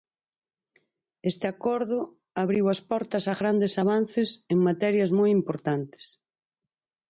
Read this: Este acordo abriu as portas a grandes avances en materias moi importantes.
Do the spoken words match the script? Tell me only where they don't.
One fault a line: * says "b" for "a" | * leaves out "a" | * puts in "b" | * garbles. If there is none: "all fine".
all fine